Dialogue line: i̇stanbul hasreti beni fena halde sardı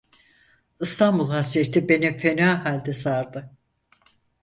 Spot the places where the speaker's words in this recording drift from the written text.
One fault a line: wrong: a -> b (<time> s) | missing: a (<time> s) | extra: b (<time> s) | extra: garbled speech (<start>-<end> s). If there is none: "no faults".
no faults